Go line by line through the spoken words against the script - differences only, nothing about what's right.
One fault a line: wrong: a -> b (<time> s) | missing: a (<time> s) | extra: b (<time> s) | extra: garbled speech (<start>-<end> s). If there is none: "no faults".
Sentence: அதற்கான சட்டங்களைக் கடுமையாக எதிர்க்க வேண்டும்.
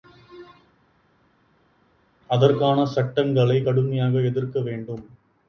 no faults